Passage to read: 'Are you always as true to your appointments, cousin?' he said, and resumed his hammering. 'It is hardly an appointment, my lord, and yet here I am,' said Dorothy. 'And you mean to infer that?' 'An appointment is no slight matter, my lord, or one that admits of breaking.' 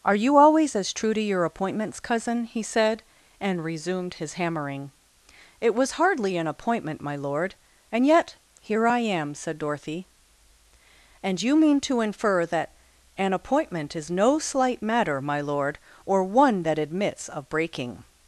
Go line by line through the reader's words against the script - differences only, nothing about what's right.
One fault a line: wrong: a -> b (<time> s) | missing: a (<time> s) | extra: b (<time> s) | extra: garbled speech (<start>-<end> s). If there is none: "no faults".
wrong: is -> was (5.8 s)